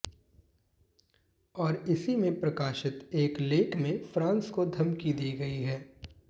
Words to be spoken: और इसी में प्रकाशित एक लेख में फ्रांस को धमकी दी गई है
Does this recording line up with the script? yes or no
yes